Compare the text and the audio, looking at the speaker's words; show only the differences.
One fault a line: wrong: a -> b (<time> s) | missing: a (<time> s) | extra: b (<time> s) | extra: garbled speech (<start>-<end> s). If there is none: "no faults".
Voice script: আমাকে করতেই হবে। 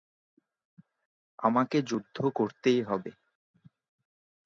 extra: যুদ্ধ (1.8 s)